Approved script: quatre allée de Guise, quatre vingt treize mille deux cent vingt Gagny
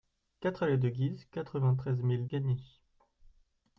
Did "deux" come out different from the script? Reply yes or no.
yes